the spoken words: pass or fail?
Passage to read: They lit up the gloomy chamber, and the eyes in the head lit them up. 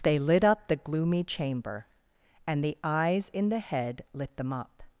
pass